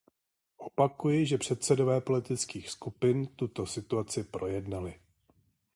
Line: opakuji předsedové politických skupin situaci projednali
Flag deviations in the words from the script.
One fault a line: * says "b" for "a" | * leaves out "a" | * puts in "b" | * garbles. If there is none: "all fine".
* puts in "že"
* puts in "tuto"